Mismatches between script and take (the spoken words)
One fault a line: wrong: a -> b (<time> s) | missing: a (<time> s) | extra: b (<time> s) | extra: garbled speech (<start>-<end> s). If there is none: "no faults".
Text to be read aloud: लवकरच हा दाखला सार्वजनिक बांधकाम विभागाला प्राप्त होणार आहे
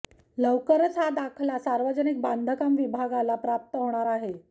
no faults